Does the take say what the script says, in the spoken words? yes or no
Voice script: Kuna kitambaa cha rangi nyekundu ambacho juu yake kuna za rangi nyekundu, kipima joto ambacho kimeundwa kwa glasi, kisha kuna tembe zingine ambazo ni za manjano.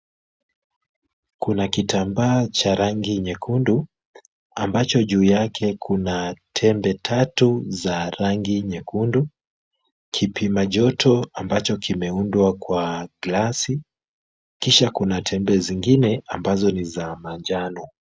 no